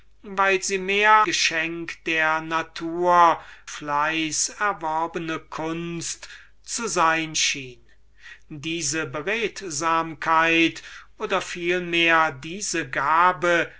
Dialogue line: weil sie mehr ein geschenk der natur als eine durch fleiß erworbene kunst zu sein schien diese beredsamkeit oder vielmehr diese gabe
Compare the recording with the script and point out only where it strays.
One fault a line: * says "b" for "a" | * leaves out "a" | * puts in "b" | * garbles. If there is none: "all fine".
* leaves out "ein"
* leaves out "als eine durch"